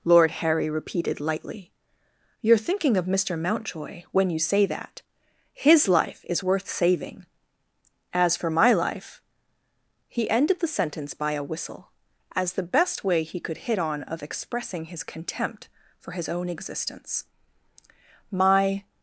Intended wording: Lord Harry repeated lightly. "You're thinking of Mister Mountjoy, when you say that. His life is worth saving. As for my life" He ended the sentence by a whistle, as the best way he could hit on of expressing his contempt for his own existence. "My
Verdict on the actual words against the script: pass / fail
pass